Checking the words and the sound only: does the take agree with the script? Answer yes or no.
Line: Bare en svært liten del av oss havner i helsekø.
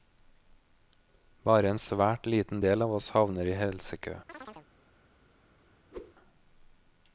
no